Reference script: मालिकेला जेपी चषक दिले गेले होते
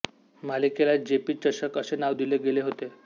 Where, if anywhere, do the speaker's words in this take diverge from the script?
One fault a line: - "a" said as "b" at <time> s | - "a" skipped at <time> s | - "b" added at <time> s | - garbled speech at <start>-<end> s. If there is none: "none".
- "असे नाव" added at 1.8 s